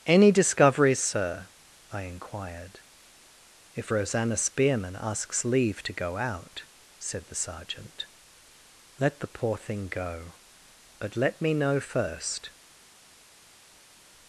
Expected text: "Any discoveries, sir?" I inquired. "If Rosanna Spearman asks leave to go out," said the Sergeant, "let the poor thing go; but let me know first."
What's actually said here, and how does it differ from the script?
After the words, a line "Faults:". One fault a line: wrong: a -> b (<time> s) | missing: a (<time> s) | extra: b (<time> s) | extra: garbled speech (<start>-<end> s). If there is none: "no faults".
"Any discoveries, sir?" I inquired. "If Rosanna Spearman asks leave to go out," said the Sergeant, "let the poor thing go; but let me know first."
Faults:
no faults